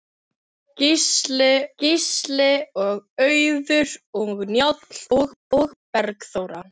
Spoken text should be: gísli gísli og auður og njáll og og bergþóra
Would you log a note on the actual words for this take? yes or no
no